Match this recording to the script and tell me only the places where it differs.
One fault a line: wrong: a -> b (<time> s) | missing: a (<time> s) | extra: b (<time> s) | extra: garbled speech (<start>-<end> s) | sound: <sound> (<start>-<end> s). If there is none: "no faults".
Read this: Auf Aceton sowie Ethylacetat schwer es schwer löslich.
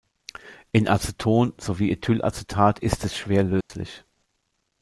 wrong: Auf -> In (0.7 s)
wrong: schwer -> ist (2.8 s)
sound: dropout (3.6-3.7 s)